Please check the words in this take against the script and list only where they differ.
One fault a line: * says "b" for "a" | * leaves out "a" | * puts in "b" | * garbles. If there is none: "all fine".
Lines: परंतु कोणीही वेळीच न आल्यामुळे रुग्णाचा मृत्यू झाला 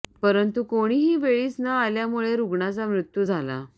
all fine